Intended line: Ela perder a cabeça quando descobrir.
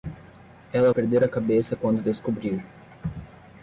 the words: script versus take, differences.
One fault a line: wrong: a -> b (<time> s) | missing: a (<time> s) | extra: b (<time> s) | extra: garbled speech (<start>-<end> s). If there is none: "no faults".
no faults